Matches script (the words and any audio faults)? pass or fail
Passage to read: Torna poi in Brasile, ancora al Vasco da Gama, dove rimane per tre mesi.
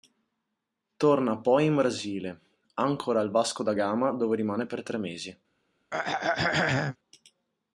fail